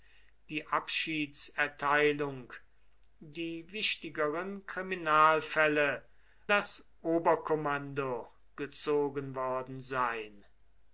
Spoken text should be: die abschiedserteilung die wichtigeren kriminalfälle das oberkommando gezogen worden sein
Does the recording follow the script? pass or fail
pass